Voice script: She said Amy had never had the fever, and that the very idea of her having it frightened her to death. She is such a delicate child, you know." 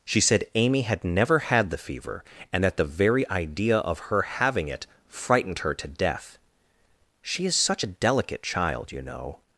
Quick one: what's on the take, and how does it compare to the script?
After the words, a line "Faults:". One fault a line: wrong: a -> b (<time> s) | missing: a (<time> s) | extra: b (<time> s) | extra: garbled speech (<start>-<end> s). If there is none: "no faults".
She said Amy had never had the fever, and that the very idea of her having it frightened her to death. She is such a delicate child, you know."
Faults:
no faults